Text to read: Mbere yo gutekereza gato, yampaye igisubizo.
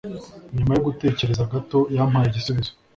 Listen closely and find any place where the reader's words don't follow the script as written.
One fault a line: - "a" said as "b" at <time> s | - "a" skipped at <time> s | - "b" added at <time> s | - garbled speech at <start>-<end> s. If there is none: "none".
- "Mbere" said as "Nyuma" at 0.6 s